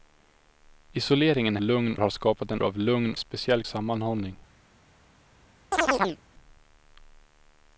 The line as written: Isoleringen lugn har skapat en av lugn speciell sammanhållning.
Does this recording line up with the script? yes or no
yes